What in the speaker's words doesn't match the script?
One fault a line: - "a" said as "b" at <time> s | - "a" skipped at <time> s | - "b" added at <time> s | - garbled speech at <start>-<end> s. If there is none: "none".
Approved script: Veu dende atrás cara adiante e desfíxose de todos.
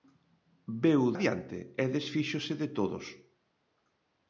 - "dende atrás cara" skipped at 1.0 s